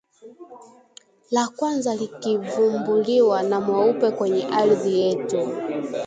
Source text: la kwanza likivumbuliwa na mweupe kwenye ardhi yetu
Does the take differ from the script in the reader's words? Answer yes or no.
no